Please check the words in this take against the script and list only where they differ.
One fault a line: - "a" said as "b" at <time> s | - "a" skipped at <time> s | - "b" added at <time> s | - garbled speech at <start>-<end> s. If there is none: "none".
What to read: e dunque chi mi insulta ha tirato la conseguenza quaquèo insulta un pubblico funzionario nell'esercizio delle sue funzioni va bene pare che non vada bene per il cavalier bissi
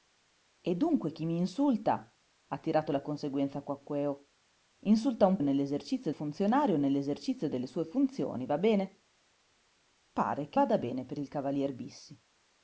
- "pubblico" said as "nell'esercizio" at 5.4 s
- "non" skipped at 10.6 s